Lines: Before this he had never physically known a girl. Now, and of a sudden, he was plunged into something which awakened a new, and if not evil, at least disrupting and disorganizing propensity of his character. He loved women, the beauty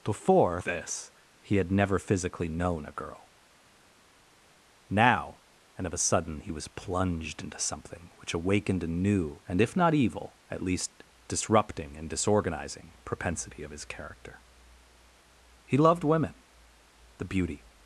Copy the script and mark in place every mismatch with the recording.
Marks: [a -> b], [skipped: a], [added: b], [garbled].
Before this he had never physically known a girl. Now, and of a sudden, he was plunged into something which awakened a new, and if not evil, at least disrupting and disorganizing propensity of his character. He loved women, the beauty